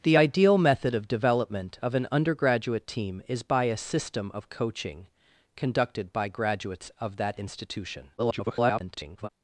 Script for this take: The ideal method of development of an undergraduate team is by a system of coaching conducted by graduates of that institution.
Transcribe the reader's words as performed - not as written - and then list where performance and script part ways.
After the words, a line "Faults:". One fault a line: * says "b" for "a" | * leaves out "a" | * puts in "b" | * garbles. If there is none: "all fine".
The ideal method of development of an undergraduate team is by a system of coaching conducted by graduates of that institution. [garbled]
Faults:
* garbles